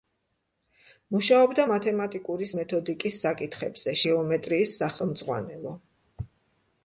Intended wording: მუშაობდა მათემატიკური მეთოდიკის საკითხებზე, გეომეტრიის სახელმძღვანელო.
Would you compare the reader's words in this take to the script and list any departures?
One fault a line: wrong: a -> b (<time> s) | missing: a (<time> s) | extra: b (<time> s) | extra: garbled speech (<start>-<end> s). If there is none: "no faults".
no faults